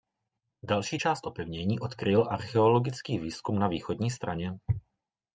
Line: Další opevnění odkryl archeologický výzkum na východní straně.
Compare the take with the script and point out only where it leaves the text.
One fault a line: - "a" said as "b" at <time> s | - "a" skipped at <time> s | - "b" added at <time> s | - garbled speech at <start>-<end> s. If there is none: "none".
- "část" added at 1.0 s